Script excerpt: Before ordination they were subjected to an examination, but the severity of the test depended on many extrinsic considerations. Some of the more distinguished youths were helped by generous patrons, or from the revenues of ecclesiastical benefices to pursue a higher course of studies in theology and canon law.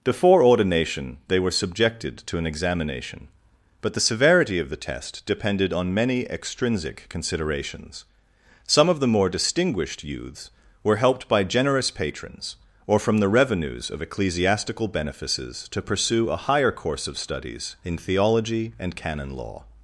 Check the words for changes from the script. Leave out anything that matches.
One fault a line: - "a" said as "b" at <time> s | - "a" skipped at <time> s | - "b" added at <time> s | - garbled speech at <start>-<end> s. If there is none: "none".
none